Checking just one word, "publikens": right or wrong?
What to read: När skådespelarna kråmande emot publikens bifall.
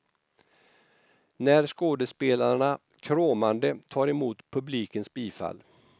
right